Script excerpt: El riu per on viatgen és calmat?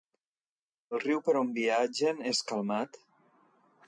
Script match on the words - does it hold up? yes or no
yes